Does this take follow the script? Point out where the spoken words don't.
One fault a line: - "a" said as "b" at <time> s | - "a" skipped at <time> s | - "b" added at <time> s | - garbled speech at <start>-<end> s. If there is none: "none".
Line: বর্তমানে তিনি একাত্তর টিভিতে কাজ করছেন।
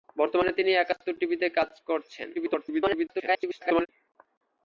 - garbled speech at 2.3-3.9 s